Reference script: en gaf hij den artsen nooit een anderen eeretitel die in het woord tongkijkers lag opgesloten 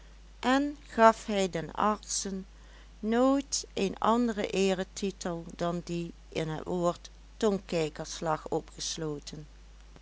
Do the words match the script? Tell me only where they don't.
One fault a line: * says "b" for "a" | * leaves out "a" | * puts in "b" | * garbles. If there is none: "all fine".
* puts in "dan"